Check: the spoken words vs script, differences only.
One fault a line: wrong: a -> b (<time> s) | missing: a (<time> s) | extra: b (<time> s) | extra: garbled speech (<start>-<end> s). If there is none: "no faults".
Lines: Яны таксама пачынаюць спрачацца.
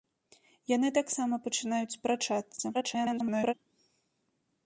extra: garbled speech (2.7-3.5 s)